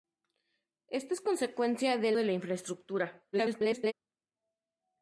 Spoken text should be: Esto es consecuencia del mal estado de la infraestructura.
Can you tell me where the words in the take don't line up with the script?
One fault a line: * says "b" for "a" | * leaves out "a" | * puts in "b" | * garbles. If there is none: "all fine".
* leaves out "mal estado"
* garbles